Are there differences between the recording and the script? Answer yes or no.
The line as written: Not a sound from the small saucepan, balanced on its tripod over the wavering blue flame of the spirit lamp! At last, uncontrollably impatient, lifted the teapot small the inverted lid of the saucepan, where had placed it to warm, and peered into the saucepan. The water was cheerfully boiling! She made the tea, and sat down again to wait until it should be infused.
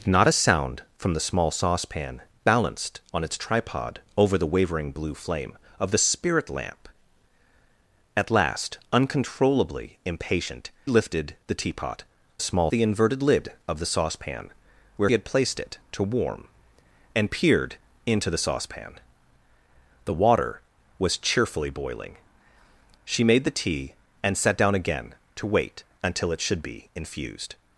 no